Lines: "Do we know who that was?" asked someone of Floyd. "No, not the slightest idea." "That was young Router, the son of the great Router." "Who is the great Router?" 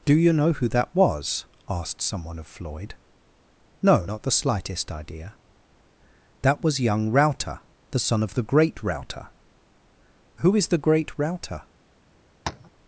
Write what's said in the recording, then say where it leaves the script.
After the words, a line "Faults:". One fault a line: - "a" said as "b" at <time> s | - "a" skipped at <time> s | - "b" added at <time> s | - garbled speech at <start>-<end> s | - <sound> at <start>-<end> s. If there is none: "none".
"Do you know who that was?" asked someone of Floyd. "No, not the slightest idea." "That was young Router, the son of the great Router." "Who is the great Router?"
Faults:
- "we" said as "you" at 0.1 s
- tap at 12.5-12.7 s